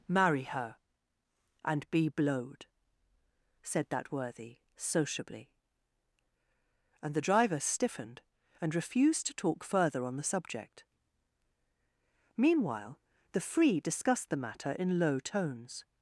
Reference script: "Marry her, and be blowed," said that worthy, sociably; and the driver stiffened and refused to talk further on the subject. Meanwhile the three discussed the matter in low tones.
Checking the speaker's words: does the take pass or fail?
fail